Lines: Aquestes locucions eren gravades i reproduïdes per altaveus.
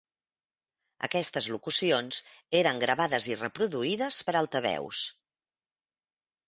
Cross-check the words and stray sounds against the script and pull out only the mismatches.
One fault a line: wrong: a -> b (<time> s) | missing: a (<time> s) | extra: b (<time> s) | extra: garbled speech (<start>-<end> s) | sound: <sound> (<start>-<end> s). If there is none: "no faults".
no faults